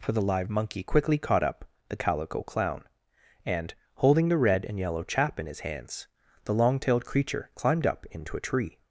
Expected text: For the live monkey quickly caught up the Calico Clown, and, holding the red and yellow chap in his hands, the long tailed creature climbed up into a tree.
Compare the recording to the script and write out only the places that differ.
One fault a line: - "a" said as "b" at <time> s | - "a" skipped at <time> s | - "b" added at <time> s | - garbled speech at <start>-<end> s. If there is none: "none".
none